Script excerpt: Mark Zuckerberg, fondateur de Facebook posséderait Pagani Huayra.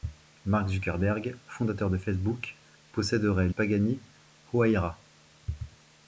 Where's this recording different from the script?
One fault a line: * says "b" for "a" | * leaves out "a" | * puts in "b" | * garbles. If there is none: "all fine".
all fine